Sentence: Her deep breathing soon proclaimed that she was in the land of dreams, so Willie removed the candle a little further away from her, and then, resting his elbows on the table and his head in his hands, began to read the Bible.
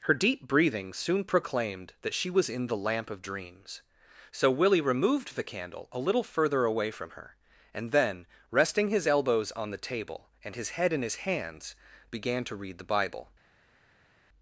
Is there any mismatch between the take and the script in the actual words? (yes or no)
yes